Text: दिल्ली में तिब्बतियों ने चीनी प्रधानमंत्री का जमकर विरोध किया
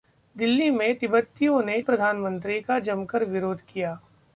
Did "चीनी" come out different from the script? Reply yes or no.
yes